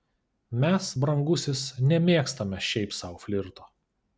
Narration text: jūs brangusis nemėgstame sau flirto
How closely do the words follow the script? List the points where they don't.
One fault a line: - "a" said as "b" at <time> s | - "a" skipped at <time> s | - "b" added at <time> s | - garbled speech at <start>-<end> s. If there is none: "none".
- "jūs" said as "mes" at 0.6 s
- "šiaip" added at 2.7 s